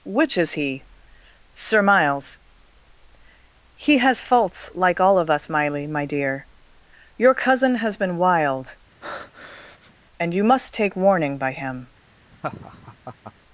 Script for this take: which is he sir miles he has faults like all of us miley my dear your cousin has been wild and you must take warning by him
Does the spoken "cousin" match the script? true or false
true